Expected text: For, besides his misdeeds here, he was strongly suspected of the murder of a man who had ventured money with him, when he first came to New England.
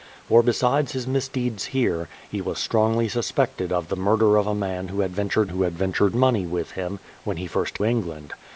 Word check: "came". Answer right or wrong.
wrong